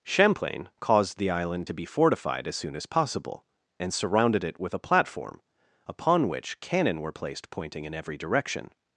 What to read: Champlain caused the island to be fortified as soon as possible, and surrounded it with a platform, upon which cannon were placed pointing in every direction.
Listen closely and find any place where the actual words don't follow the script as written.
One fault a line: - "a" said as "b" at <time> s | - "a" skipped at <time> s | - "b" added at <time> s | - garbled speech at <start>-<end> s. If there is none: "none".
none